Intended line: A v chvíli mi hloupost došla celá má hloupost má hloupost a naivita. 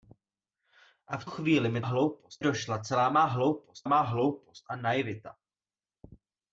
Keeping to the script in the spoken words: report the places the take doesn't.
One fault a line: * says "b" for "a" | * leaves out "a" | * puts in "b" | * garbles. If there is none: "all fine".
all fine